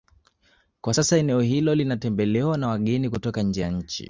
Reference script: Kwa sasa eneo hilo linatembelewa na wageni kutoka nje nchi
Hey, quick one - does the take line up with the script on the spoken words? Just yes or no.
no